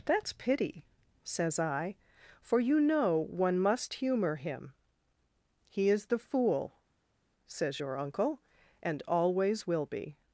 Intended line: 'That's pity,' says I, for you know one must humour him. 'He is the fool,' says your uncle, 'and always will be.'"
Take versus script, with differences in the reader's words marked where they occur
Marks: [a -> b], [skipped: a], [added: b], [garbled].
'That's pity,' says I, for you know one must humour him. 'He is the fool,' says your uncle, 'and always will be.'"